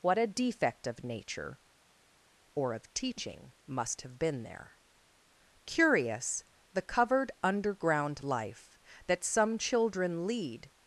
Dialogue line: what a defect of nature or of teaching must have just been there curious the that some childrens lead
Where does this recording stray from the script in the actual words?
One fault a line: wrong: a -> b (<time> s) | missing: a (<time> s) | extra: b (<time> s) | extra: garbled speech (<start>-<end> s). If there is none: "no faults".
missing: just (4.2 s)
extra: covered underground life (6.8 s)
wrong: childrens -> children (9.6 s)